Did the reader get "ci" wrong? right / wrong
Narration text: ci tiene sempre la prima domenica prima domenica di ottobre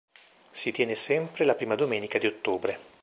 wrong